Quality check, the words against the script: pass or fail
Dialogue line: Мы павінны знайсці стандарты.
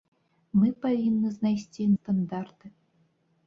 pass